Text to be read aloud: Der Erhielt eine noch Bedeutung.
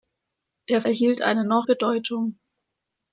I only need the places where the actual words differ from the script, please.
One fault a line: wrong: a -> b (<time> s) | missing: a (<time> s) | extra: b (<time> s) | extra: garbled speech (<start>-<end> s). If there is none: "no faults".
no faults